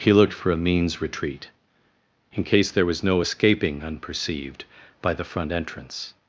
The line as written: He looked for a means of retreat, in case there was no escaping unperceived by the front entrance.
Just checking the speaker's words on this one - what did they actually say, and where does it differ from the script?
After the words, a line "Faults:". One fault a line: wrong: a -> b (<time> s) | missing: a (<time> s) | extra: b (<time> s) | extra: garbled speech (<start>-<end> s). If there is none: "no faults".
He looked for a means retreat, in case there was no escaping unperceived by the front entrance.
Faults:
missing: of (1.0 s)